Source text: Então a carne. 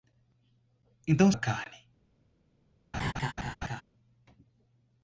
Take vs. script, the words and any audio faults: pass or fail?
fail